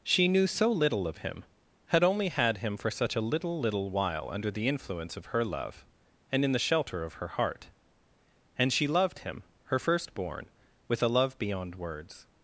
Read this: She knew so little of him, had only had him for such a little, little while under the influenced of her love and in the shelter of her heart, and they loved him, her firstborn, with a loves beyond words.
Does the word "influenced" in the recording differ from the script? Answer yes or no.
yes